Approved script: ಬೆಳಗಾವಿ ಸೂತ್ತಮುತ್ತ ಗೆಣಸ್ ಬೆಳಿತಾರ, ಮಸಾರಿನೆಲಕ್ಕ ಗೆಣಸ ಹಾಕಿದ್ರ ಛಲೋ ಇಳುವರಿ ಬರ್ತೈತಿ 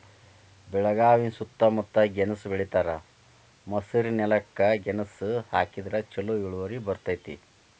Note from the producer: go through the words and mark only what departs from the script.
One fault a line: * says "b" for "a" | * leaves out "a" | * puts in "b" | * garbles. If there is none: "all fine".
all fine